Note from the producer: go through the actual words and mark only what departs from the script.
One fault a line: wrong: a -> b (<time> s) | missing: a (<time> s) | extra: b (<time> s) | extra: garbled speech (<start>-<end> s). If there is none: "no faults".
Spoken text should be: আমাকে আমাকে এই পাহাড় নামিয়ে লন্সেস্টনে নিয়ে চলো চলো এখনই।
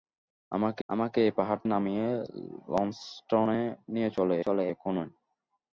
no faults